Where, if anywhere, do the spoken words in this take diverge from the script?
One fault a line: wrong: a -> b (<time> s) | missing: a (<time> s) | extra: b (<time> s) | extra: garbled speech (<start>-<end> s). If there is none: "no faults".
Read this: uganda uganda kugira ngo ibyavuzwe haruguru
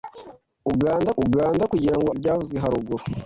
no faults